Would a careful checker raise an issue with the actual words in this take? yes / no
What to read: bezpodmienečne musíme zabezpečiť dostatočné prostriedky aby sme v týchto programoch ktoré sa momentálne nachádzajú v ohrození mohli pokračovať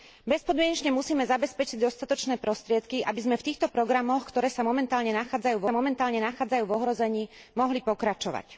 yes